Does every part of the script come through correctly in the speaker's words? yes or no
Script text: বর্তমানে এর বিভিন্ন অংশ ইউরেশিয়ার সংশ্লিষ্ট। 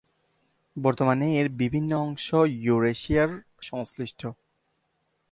yes